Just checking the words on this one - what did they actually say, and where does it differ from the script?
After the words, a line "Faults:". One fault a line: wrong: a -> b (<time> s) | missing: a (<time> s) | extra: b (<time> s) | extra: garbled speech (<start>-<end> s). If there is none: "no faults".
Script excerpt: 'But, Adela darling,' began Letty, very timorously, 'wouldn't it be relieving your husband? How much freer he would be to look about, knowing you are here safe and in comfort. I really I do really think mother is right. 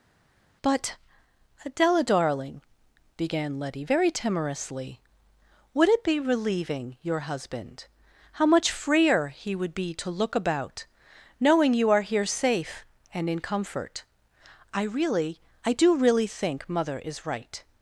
'But, Adela darling,' began Letty, very timorously, 'would it be relieving your husband? How much freer he would be to look about, knowing you are here safe and in comfort. I really I do really think mother is right.
Faults:
wrong: wouldn't -> would (5.7 s)